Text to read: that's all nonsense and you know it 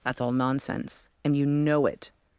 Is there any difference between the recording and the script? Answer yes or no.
no